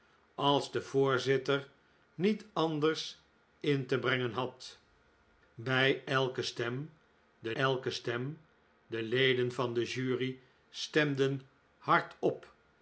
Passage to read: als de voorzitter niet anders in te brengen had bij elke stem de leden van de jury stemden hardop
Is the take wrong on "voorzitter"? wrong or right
right